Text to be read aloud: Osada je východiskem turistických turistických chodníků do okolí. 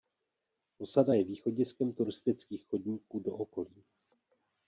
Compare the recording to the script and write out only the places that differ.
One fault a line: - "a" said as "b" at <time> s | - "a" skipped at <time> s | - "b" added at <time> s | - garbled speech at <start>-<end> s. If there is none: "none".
- "turistických" skipped at 2.6 s